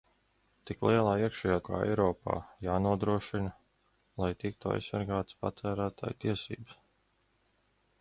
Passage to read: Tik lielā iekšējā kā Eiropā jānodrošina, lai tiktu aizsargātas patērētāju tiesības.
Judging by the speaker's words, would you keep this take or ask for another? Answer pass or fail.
pass